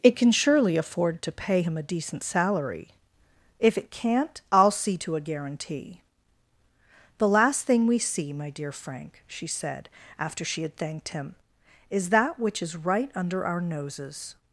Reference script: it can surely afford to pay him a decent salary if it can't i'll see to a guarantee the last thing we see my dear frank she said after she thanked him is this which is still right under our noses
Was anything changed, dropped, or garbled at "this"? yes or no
yes